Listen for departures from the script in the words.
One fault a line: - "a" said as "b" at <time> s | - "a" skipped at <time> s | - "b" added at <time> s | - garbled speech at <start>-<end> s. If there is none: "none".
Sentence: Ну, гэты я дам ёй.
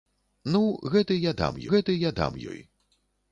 - "гэты я дам" added at 1.7 s